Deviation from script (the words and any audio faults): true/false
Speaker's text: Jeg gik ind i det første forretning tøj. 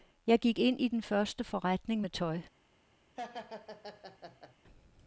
true